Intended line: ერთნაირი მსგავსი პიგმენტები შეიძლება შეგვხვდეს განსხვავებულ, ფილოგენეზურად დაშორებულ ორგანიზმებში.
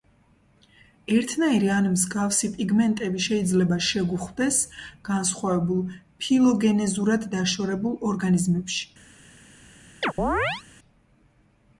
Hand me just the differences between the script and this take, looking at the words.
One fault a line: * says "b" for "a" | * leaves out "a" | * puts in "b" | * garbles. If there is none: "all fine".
* puts in "ან"